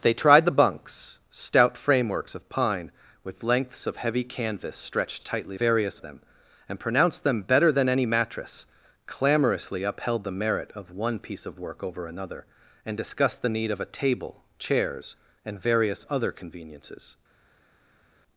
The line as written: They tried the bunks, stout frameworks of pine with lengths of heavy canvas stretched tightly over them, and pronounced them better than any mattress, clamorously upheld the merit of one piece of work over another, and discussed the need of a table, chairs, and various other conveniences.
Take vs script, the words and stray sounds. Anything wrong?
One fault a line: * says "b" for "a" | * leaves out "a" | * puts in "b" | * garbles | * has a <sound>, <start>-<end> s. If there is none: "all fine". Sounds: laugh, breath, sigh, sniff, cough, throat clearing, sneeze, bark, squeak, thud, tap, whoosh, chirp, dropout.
* says "various" for "over"